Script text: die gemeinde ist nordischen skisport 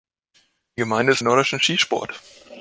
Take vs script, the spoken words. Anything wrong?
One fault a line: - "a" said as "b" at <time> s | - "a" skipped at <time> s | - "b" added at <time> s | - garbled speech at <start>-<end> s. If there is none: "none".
none